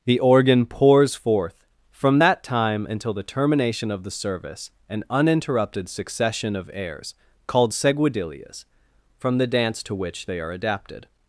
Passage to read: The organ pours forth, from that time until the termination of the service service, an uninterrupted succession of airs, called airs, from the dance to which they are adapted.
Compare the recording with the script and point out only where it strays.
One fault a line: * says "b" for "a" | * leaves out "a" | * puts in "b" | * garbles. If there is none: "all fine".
* leaves out "service"
* says "seguidillas" for "airs"